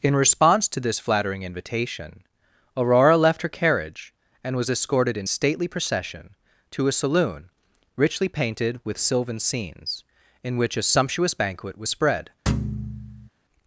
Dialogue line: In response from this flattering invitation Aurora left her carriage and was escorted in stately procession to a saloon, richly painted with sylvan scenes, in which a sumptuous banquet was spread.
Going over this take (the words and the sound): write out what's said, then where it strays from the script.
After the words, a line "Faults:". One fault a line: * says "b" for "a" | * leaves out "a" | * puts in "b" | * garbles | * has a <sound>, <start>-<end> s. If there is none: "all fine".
In response to this flattering invitation Aurora left her carriage and was escorted in stately procession to a saloon, richly painted with sylvan scenes, in which a sumptuous banquet was spread.
Faults:
* says "to" for "from"
* has a thud, 12.5-13.3 s